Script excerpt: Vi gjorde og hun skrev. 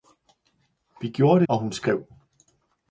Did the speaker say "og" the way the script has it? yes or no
yes